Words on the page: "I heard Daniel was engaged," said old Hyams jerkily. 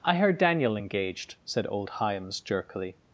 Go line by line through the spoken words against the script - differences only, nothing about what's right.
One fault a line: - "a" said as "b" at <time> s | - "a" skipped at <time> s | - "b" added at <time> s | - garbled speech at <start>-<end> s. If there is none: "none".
- "was" skipped at 0.8 s